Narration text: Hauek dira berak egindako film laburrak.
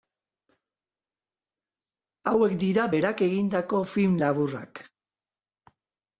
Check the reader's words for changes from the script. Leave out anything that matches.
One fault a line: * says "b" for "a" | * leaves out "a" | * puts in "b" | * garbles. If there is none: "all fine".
all fine